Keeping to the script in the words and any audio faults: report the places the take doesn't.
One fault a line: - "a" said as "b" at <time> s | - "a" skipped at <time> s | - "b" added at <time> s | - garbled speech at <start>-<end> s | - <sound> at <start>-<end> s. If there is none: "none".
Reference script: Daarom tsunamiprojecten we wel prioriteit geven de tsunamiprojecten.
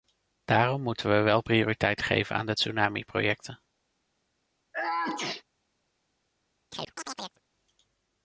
- "tsunamiprojecten" said as "moeten" at 0.8 s
- "aan" added at 2.4 s
- sneeze at 4.7-5.4 s
- chirp at 6.7-7.4 s